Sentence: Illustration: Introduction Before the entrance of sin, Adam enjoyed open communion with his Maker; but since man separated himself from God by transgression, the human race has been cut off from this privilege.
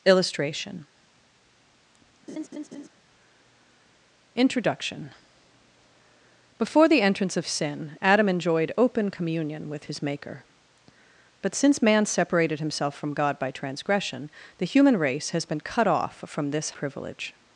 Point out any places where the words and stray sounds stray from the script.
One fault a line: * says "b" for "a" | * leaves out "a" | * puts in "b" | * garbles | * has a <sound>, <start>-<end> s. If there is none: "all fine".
* has a laugh, 2.3-2.9 s